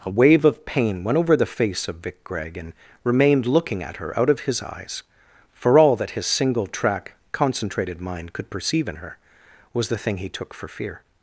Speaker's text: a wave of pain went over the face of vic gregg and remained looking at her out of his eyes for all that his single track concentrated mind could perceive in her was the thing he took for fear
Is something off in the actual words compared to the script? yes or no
no